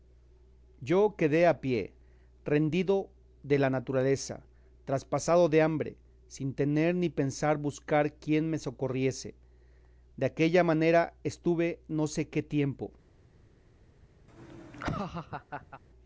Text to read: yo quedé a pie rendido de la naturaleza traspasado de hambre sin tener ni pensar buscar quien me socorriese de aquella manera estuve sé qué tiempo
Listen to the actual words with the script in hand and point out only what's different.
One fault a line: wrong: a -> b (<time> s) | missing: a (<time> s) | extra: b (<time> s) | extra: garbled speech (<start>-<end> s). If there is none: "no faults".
extra: no (11.9 s)